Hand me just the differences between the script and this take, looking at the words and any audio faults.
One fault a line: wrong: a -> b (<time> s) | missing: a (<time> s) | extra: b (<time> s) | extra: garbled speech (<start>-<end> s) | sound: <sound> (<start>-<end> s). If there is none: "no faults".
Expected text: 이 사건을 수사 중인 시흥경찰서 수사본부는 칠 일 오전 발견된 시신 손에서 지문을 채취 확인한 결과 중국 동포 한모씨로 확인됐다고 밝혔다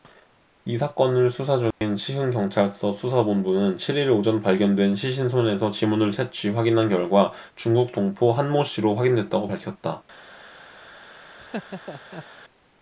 sound: dropout (1.7-1.8 s)
sound: laugh (11.4-12.3 s)